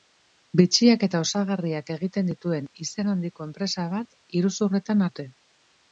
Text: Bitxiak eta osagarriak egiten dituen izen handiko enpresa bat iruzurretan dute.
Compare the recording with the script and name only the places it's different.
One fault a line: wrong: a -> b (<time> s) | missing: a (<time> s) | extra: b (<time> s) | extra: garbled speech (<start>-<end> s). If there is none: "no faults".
no faults